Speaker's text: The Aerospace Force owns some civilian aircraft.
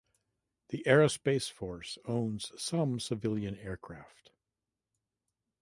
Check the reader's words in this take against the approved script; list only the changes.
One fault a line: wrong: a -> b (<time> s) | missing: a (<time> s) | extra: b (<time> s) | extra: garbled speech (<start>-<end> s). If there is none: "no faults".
no faults